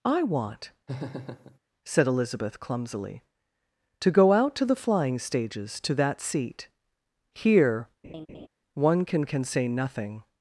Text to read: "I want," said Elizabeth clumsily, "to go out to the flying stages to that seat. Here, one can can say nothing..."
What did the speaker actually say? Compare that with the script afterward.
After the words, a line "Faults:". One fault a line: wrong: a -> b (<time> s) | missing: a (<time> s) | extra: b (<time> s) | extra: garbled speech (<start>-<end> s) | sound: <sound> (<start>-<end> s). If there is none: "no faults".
"I want," said Elizabeth clumsily, "to go out to the flying stages to that seat. Here, one can can say nothing..."
Faults:
sound: laugh (0.9-1.6 s)
sound: laugh (8.0-8.5 s)